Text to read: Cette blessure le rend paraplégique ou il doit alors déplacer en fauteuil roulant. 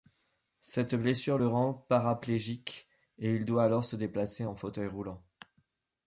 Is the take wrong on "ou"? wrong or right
wrong